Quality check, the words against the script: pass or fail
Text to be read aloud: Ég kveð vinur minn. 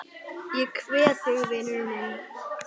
fail